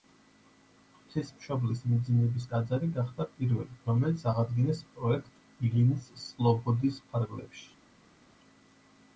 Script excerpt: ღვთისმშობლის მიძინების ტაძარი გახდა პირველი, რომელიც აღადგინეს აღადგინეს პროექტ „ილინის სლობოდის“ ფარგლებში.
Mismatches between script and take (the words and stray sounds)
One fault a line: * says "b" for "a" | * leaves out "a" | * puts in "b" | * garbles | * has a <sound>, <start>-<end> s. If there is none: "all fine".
* leaves out "აღადგინეს"